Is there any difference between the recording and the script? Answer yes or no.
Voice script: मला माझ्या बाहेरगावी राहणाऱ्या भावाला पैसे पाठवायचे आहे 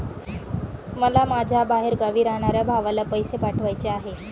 no